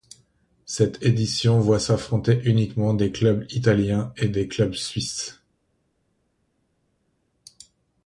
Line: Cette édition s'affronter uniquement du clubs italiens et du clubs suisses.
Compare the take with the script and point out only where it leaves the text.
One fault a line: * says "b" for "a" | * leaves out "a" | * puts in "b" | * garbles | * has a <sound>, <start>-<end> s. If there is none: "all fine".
* puts in "voit"
* says "des" for "du"
* says "des" for "du"